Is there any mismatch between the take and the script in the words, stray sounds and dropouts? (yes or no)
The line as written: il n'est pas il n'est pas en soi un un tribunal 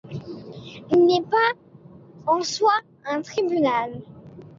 yes